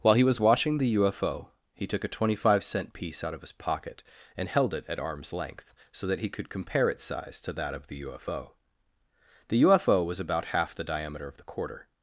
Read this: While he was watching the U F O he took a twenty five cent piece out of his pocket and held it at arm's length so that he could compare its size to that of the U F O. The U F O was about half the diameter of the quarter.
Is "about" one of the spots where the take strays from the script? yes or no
no